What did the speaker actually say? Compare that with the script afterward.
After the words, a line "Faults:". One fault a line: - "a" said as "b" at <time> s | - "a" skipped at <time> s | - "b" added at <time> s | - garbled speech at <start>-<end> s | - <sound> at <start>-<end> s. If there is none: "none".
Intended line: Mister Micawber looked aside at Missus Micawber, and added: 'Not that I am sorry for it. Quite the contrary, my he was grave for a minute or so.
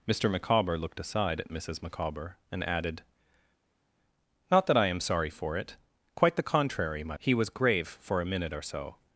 Mister Micawber looked aside at Missus Micawber, and added: 'Not that I am sorry for it. Quite the contrary, my he was grave for a minute or so.
Faults:
none